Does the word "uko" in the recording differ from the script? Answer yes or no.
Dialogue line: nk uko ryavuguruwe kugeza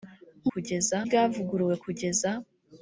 yes